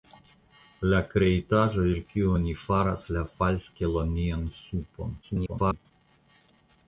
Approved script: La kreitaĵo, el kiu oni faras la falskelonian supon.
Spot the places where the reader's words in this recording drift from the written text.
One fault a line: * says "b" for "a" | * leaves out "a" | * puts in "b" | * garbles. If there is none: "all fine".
* garbles